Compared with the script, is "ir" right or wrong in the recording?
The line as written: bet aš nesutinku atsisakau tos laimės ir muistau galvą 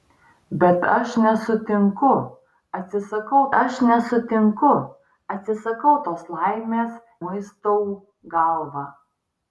wrong